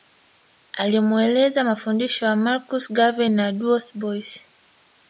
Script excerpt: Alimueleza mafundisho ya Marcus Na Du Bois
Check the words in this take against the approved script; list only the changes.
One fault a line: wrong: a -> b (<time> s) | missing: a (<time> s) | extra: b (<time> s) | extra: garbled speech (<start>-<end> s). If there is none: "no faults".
extra: Garvey (2.9 s)